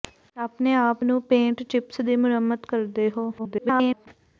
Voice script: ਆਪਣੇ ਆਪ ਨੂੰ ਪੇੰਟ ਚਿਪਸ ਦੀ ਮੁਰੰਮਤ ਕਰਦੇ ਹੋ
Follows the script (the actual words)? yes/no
no